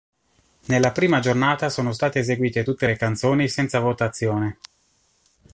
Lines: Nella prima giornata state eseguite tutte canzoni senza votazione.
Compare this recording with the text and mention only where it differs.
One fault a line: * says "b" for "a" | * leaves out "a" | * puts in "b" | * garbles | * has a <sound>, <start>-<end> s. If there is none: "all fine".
* puts in "sono"
* puts in "le"